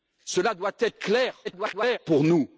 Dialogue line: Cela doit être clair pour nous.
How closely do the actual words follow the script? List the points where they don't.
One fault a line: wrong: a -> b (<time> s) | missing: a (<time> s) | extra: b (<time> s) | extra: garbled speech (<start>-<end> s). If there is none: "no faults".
extra: garbled speech (1.4-2.0 s)